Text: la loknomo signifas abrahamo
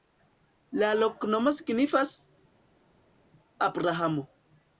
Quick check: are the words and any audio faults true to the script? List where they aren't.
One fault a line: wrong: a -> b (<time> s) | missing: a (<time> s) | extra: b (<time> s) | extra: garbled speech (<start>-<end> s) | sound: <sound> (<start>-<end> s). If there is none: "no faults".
no faults